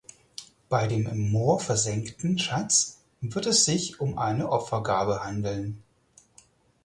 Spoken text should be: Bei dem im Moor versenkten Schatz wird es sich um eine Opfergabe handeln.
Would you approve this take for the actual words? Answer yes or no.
yes